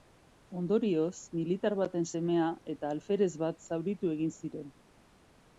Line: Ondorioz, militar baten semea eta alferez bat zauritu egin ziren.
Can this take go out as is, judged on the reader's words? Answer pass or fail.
pass